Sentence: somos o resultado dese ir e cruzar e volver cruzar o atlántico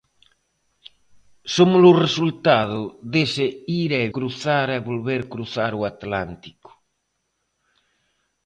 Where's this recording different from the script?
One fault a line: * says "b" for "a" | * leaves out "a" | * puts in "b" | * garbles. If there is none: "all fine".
all fine